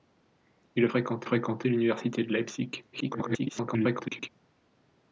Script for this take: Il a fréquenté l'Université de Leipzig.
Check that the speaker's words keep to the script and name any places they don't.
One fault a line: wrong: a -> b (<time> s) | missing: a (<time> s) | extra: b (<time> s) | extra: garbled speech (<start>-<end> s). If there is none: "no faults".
extra: fréquenté (1.2 s)
extra: garbled speech (2.9-4.3 s)